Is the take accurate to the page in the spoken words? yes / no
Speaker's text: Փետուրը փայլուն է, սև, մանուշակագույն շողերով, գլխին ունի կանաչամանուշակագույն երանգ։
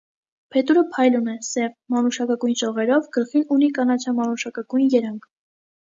yes